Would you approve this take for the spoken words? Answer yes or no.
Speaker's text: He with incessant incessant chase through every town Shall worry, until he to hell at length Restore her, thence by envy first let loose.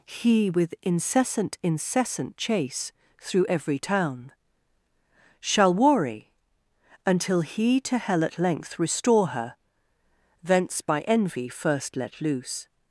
yes